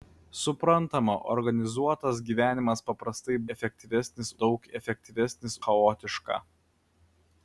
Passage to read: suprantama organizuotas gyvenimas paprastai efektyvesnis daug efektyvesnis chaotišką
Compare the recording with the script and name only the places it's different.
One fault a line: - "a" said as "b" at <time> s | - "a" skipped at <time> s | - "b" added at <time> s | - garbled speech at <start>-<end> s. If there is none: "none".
none